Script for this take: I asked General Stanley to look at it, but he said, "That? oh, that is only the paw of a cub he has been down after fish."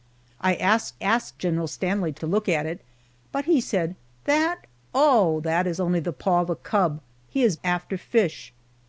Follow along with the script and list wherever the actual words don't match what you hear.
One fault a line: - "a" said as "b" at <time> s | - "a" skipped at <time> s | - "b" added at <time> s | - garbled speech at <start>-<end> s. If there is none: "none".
- "asked" added at 1.0 s
- "to" added at 2.2 s
- "been down" skipped at 7.6 s